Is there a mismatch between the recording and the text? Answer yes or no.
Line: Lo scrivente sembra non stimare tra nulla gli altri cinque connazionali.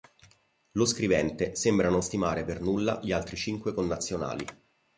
yes